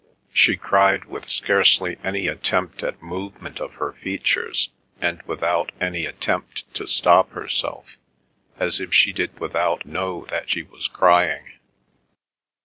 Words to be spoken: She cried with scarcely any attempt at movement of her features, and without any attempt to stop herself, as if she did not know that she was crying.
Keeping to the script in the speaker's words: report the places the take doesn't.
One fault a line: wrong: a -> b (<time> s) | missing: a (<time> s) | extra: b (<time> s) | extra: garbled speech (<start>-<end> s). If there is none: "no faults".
wrong: not -> without (9.4 s)